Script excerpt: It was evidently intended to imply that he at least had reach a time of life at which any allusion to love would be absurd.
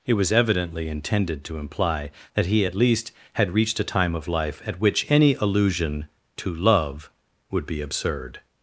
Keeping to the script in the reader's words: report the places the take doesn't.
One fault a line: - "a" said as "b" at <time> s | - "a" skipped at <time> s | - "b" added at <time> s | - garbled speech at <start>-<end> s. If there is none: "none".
- "reach" said as "reached" at 3.5 s